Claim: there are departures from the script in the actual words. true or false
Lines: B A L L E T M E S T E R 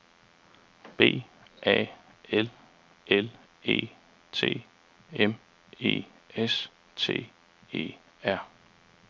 false